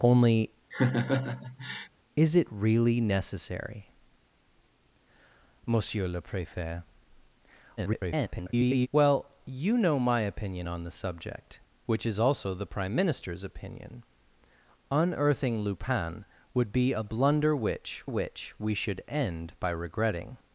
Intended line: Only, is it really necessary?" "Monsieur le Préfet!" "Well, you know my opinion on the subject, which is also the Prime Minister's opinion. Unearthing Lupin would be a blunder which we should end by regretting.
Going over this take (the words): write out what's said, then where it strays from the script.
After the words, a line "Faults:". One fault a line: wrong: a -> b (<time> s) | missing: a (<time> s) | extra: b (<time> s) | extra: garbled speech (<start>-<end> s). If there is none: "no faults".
Only, is it really necessary?" "Monsieur le Préfet!" [garbled] "Well, you know my opinion on the subject, which is also the Prime Minister's opinion. Unearthing Lupin would be a blunder which which we should end by regretting.
Faults:
extra: garbled speech (7.8-8.9 s)
extra: which (18.0 s)